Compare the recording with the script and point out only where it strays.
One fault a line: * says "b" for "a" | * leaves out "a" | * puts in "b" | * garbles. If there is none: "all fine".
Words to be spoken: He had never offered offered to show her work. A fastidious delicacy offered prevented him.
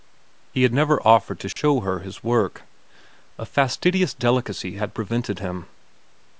* leaves out "offered"
* puts in "his"
* says "had" for "offered"